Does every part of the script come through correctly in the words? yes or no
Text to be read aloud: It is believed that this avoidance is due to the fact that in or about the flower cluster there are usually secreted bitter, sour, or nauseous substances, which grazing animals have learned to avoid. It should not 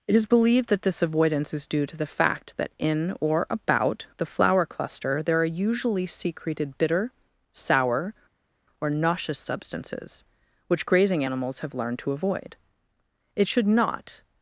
yes